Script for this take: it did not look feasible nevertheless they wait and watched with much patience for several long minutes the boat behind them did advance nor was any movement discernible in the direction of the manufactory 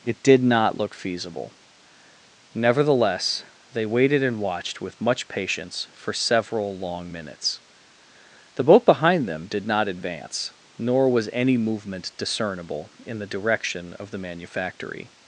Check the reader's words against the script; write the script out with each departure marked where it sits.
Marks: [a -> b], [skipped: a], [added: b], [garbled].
it did not look feasible nevertheless they [wait -> waited] and watched with much patience for several long minutes the boat behind them did [added: not] advance nor was any movement discernible in the direction of the manufactory